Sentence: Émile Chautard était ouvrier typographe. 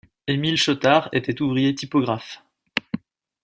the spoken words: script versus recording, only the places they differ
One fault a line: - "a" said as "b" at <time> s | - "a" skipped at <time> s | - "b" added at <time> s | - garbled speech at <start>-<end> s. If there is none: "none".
none